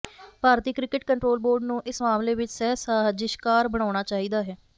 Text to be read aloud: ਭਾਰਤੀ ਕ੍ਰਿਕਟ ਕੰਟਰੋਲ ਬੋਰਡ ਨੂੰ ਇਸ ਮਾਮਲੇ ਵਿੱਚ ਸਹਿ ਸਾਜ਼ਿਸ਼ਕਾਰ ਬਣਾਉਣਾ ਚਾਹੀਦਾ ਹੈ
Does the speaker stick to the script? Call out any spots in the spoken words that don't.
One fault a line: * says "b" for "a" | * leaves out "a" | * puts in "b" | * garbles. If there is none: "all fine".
all fine